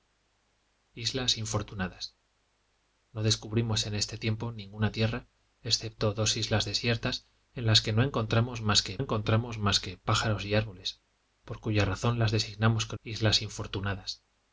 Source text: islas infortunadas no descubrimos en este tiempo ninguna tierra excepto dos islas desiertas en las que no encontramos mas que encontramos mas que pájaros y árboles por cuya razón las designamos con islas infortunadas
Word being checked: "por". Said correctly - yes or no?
yes